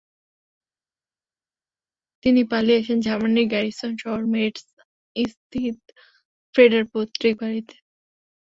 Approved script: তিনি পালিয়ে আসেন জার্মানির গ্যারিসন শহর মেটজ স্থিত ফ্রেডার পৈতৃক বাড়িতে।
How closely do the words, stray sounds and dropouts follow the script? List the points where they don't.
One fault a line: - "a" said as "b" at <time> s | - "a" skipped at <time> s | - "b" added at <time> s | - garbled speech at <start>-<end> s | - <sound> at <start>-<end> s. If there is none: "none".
none